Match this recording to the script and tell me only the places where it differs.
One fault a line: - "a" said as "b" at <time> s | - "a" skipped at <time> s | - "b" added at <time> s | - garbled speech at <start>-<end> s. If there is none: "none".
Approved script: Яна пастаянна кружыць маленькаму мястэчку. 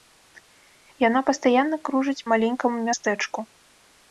none